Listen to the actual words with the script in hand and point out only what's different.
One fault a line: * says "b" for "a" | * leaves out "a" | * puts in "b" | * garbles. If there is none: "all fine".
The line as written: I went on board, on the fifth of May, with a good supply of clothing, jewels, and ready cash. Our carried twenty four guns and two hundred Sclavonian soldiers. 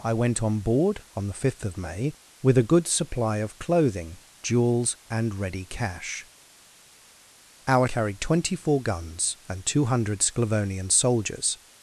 all fine